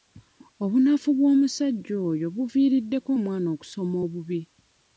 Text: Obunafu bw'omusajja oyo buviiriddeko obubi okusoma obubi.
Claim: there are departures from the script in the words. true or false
true